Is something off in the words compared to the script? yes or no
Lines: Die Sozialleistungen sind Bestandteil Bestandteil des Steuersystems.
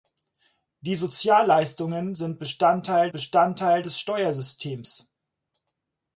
no